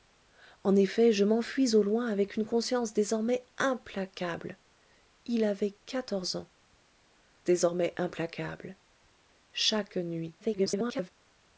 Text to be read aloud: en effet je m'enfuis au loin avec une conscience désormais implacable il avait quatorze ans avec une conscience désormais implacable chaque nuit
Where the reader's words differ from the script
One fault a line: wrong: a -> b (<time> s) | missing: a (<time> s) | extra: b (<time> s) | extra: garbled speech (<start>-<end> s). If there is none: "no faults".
missing: avec une conscience (6.5 s)
extra: garbled speech (10.4-11.1 s)